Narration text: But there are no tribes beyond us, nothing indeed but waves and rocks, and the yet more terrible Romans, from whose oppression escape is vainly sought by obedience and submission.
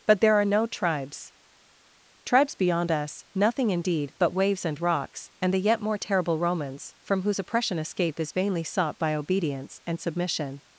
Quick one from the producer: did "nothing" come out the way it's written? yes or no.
yes